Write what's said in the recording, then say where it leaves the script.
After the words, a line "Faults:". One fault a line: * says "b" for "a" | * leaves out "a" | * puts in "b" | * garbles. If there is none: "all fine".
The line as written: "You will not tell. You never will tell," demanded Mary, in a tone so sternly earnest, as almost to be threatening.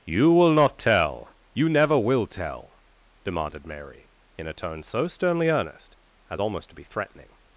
"You will not tell. You never will tell," demanded Mary, in a tone so sternly earnest, as almost to be threatening.
Faults:
all fine